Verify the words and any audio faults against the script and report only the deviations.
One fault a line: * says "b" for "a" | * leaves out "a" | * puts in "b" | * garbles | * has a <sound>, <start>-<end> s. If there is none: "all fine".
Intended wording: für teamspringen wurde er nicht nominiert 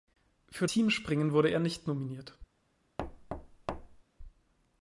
* has a thud, 3.0-4.0 s